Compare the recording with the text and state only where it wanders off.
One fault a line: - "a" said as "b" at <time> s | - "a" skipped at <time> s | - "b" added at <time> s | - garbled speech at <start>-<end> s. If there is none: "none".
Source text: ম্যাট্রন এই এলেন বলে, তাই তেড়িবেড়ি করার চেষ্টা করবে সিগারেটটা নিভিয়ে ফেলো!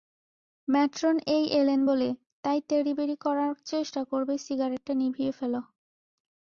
none